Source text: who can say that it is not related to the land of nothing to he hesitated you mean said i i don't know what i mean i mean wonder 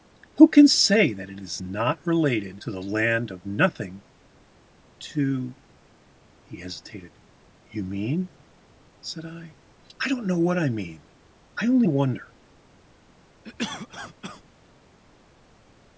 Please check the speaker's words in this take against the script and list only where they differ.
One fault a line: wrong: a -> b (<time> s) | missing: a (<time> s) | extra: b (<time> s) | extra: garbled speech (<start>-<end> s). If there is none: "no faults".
wrong: mean -> only (11.7 s)